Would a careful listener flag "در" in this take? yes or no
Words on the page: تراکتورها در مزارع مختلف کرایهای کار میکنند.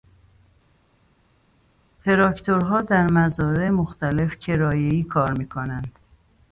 no